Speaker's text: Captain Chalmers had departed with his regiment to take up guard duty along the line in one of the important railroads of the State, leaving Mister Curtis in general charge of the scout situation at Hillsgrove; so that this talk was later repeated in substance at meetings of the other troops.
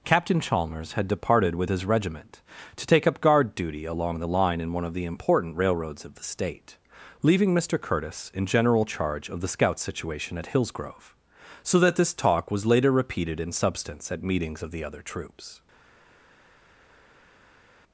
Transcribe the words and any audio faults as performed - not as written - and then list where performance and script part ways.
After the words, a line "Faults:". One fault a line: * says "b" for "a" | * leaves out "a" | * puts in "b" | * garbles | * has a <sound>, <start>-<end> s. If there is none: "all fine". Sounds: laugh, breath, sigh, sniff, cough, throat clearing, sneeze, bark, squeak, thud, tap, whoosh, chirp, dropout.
Captain Chalmers had departed with his regiment to take up guard duty along the line in one of the important railroads of the State, leaving Mister Curtis in general charge of the scout situation at Hillsgrove; so that this talk was later repeated in substance at meetings of the other troops.
Faults:
all fine